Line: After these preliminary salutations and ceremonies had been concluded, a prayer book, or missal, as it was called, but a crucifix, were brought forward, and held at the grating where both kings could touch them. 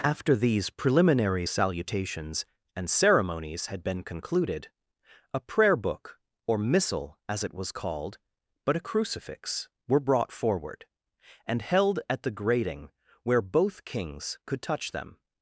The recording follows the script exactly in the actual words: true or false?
true